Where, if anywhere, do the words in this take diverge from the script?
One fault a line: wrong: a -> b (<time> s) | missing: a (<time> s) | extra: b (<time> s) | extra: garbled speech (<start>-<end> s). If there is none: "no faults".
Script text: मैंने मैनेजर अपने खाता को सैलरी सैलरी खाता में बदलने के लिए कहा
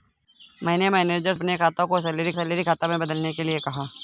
no faults